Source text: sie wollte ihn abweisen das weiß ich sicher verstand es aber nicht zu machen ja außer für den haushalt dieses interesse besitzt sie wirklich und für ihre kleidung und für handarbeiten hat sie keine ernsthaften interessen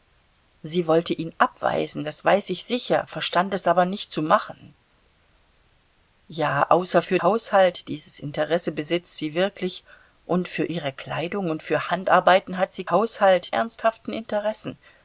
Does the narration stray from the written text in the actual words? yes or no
yes